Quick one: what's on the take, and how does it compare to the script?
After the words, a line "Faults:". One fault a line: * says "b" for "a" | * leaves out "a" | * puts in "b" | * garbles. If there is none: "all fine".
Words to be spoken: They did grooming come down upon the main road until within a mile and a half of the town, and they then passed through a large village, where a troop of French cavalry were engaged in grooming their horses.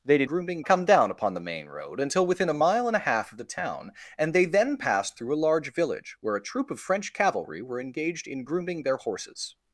They did grooming come down upon the main road until within a mile and a half of the town, and they then passed through a large village, where a troop of French cavalry were engaged in grooming their horses.
Faults:
all fine